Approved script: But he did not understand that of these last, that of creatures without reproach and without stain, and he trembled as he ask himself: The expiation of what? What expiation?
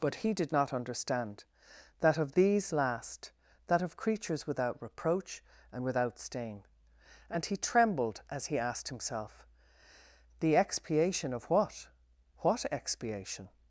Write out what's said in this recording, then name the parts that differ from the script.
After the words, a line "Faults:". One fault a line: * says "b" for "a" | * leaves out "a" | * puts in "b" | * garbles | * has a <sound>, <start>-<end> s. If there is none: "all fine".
But he did not understand that of these last, that of creatures without reproach and without stain, and he trembled as he asked himself: The expiation of what? What expiation?
Faults:
* says "asked" for "ask"